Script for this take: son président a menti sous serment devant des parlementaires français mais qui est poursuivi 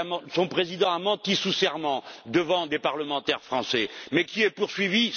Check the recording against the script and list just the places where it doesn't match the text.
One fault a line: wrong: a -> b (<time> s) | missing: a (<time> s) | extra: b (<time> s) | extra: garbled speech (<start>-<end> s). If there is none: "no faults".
no faults